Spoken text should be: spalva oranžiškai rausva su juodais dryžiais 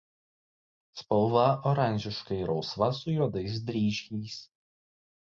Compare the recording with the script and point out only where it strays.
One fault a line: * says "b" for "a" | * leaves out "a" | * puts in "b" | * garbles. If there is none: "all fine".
all fine